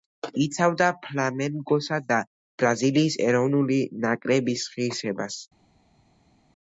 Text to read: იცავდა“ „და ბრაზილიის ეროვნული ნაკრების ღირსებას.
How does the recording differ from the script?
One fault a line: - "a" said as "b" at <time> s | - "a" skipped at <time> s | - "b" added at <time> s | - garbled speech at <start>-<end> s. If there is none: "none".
- "ფლამენგოსა" added at 1.0 s